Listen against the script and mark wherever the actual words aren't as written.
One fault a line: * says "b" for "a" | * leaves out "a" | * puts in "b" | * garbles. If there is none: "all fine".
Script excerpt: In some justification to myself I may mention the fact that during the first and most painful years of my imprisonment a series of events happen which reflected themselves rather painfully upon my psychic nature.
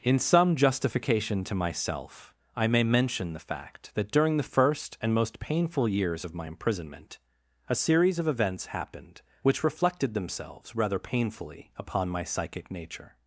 * says "happened" for "happen"